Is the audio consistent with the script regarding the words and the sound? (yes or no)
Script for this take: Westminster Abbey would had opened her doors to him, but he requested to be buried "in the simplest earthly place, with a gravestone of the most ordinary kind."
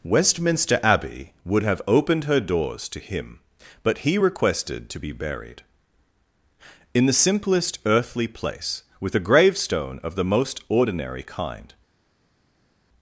no